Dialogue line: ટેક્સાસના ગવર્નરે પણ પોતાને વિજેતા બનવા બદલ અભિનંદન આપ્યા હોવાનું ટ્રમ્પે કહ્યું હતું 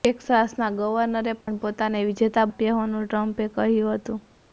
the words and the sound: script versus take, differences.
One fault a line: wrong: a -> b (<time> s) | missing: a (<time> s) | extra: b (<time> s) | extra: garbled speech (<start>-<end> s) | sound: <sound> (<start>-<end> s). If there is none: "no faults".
sound: dropout (1.4-1.5 s)
missing: બનવા બદલ અભિનંદન (2.5 s)